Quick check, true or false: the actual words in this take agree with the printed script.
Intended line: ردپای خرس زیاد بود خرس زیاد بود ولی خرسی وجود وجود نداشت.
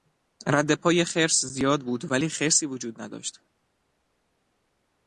false